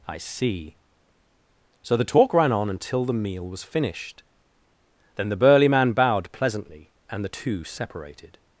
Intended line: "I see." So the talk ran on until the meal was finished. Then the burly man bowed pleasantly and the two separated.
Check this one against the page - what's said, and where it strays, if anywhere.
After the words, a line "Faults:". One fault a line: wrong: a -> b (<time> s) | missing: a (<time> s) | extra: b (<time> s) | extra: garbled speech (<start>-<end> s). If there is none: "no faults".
"I see." So the talk ran on until the meal was finished. Then the burly man bowed pleasantly and the two separated.
Faults:
no faults